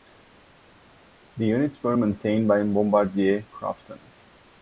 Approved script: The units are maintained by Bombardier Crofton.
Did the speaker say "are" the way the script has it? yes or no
no